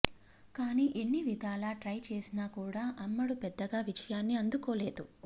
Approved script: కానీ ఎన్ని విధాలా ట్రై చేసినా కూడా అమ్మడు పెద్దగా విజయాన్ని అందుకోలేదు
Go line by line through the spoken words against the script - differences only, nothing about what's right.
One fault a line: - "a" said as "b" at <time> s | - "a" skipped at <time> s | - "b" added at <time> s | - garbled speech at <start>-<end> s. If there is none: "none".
none